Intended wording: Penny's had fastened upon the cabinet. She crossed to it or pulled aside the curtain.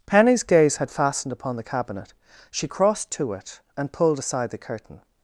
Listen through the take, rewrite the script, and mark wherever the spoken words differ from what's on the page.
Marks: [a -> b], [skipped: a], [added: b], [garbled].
Penny's [added: gaze] had fastened upon the cabinet. She crossed to it [or -> and] pulled aside the curtain.